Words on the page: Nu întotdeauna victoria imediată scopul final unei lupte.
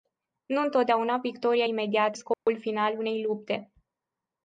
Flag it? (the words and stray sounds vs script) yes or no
yes